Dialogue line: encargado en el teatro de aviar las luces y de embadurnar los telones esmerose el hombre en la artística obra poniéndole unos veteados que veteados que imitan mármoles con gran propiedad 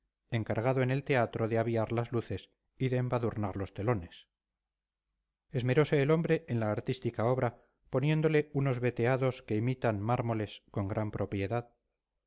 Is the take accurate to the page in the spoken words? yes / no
no